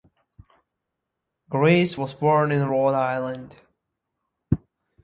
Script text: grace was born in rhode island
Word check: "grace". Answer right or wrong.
right